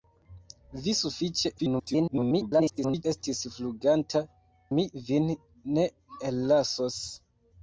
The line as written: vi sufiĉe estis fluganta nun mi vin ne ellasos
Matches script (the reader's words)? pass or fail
fail